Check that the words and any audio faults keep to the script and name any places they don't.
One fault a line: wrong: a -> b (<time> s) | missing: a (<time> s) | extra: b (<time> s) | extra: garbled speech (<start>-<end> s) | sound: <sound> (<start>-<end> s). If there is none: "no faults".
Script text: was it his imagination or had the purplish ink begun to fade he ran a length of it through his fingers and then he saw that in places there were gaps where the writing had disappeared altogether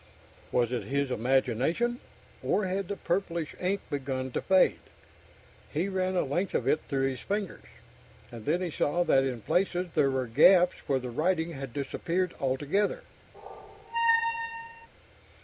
sound: squeak (13.3-14.9 s)